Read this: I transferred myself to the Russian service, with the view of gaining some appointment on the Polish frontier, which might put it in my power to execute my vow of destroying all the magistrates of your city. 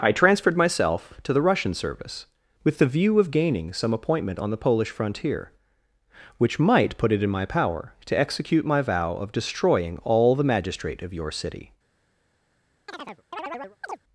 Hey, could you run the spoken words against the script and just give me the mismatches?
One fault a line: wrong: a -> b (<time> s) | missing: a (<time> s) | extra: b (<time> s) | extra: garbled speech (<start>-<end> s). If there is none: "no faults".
wrong: magistrates -> magistrate (10.4 s)